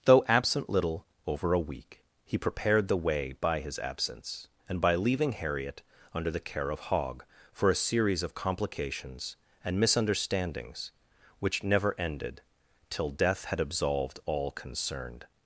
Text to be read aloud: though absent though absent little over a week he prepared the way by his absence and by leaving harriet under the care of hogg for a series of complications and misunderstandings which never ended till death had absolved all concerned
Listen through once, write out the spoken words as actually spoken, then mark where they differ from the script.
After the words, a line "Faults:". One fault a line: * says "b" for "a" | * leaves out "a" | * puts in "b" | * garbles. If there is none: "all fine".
though absent little over a week he prepared the way by his absence and by leaving harriet under the care of hogg for a series of complications and misunderstandings which never ended till death had absolved all concerned
Faults:
* leaves out "though absent"